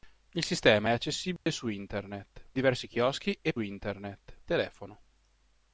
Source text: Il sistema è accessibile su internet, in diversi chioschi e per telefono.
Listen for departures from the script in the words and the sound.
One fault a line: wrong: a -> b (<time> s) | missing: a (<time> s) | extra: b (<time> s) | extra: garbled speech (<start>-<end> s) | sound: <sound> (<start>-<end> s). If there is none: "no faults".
sound: dropout (1.4-1.5 s)
missing: in (2.5 s)
wrong: per -> internet (3.6 s)